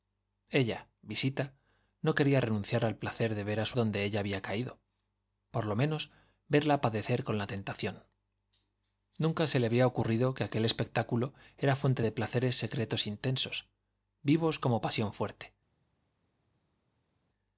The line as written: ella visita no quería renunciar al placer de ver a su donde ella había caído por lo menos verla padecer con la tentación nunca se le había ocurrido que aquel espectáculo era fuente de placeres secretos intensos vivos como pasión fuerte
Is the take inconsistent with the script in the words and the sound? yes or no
no